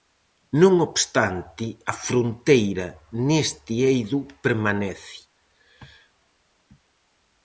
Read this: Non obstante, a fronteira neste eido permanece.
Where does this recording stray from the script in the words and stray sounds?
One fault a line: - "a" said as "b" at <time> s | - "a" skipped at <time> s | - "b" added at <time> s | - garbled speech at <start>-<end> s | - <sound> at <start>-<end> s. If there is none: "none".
none